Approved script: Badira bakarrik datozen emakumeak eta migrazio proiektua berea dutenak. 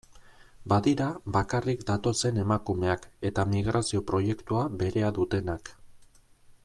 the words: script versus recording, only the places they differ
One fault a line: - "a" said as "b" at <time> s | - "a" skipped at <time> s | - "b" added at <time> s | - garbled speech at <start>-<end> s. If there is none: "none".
none